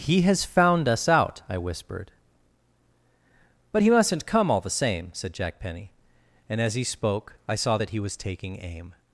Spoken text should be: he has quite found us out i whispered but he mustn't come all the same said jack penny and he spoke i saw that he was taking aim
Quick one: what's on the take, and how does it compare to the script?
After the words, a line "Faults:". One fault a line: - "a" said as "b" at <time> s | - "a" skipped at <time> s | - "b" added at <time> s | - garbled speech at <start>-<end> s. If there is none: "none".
he has found us out i whispered but he mustn't come all the same said jack penny and as he spoke i saw that he was taking aim
Faults:
- "quite" skipped at 0.4 s
- "as" added at 6.6 s